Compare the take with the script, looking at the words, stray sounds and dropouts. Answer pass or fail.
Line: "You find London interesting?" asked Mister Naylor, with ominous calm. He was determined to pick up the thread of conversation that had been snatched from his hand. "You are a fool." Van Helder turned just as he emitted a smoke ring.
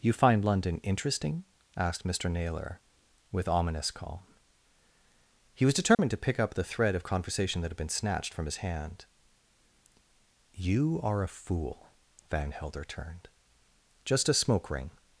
fail